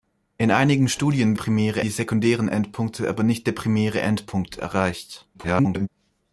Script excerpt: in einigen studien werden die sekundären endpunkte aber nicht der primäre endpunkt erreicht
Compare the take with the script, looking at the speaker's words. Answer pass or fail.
fail